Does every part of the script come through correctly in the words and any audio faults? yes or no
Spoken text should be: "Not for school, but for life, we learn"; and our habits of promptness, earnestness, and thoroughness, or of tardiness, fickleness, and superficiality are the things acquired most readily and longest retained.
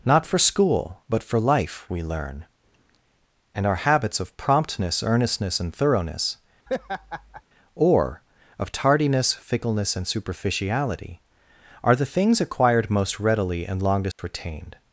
no